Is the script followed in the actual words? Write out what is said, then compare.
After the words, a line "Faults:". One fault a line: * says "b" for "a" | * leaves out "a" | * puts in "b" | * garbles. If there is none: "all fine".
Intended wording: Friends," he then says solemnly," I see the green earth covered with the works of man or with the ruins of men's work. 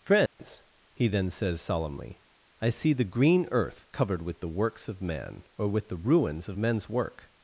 Friends," he then says solemnly," I see the green earth covered with the works of man or with the ruins of men's work.
Faults:
all fine